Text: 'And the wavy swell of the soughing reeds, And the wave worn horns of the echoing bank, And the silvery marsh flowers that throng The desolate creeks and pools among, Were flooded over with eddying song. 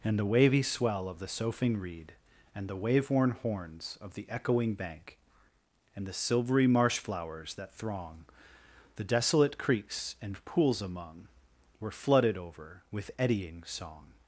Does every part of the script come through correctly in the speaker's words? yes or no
no